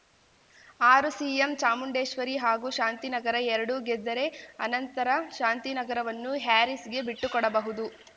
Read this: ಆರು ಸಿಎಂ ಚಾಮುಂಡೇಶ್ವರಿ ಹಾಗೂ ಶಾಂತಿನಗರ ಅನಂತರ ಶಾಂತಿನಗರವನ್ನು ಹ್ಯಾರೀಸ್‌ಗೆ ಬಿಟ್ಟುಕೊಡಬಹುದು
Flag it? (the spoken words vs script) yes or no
yes